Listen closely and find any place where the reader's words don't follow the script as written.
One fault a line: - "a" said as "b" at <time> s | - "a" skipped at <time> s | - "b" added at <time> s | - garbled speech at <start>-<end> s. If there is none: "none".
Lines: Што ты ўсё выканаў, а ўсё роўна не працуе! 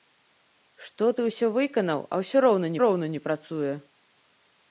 - "роўна" added at 2.9 s